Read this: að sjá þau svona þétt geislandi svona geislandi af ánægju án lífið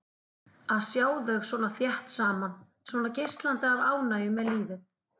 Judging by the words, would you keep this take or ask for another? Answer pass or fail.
fail